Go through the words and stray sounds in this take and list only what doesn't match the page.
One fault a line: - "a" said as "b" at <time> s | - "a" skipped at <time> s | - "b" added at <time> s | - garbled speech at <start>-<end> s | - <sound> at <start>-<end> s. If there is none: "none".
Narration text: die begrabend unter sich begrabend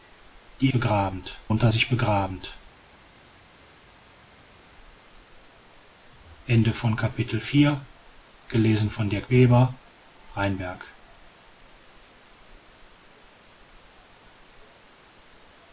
none